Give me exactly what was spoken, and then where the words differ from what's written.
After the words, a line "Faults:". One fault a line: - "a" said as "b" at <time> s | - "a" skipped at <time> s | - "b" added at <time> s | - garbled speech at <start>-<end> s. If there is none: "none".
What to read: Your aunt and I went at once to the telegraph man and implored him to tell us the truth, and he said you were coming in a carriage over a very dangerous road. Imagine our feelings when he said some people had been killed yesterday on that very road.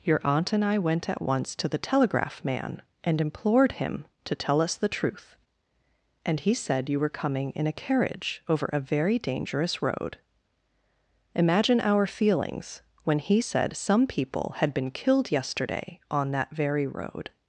Your aunt and I went at once to the telegraph man and implored him to tell us the truth, and he said you were coming in a carriage over a very dangerous road. Imagine our feelings when he said some people had been killed yesterday on that very road.
Faults:
none